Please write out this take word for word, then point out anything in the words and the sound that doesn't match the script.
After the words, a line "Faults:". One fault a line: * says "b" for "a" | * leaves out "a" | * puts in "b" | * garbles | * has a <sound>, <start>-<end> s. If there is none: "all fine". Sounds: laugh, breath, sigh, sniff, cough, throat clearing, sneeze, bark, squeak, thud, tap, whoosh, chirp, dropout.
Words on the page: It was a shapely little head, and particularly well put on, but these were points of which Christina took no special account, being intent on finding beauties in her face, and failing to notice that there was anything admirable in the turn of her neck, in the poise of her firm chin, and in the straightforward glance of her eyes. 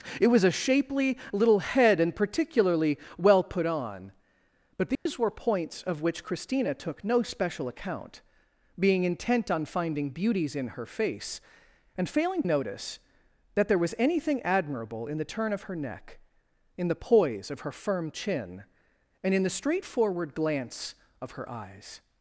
It was a shapely little head, and particularly well put on, but these were points of which Christina took no special account, being intent on finding beauties in her face, and failing notice that there was anything admirable in the turn of her neck, in the poise of her firm chin, and in the straightforward glance of her eyes.
Faults:
* has a dropout, 4.9-5.1 s
* leaves out "to"